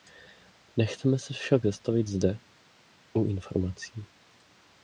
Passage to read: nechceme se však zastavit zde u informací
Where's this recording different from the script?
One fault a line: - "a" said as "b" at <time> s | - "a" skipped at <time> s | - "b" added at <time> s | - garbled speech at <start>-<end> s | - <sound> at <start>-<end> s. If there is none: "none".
none